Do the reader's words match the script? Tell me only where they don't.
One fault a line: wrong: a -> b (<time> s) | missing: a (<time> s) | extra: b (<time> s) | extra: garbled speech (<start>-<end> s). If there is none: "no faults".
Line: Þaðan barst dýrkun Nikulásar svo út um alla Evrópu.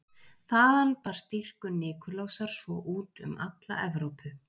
no faults